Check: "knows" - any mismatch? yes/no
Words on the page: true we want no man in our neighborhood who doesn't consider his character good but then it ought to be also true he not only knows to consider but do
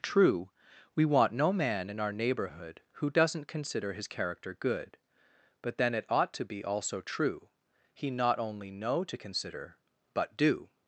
yes